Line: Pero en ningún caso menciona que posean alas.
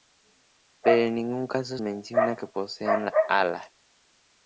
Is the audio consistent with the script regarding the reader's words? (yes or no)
yes